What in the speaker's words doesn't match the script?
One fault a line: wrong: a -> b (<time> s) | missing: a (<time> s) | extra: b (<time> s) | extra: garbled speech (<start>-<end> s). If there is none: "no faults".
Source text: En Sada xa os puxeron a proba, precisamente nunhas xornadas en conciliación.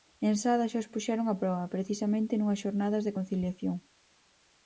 wrong: en -> de (3.0 s)